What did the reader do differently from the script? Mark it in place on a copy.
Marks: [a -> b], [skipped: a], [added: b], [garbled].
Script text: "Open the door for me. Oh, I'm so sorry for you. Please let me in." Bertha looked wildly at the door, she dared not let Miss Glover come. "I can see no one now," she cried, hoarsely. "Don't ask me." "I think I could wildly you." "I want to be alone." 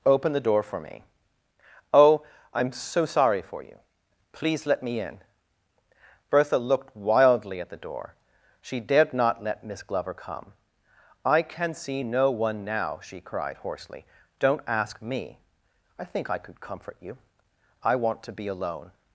"Open the door for me. Oh, I'm so sorry for you. Please let me in." Bertha looked wildly at the door, she dared not let Miss Glover come. "I can see no one now," she cried, hoarsely. "Don't ask me." "I think I could [wildly -> comfort] you." "I want to be alone."